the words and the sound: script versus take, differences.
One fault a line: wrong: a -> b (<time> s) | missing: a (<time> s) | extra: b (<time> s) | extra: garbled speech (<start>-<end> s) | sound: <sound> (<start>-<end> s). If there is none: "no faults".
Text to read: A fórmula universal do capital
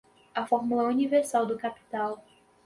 no faults